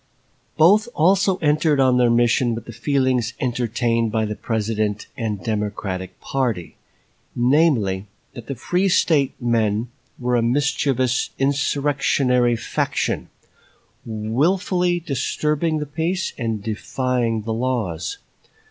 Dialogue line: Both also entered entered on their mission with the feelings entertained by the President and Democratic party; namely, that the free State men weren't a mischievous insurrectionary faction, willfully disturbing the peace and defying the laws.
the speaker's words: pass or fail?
fail